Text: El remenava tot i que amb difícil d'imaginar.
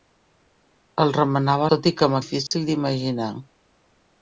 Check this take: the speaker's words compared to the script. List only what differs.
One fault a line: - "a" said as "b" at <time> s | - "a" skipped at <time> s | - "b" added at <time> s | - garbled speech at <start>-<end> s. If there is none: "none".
none